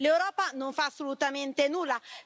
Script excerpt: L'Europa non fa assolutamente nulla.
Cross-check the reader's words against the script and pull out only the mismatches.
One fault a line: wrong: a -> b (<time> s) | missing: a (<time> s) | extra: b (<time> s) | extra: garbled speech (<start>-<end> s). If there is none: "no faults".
no faults